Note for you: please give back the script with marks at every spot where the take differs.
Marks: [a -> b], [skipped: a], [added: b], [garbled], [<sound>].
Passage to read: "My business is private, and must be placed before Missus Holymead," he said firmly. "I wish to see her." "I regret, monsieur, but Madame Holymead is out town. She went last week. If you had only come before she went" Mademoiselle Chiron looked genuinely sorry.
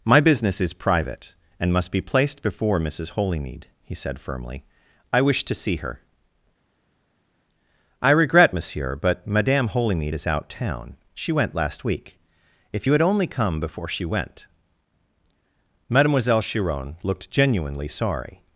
"My business is private, and must be placed before Missus Holymead," he said firmly. "I wish to see her." "I regret, monsieur, but Madame Holymead is out town. She went last week. If you had only come before she went" Mademoiselle Chiron looked genuinely sorry.